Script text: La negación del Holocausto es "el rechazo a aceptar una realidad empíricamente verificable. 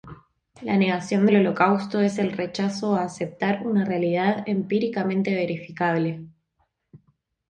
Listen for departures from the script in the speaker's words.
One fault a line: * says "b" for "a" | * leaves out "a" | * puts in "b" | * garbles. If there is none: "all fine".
all fine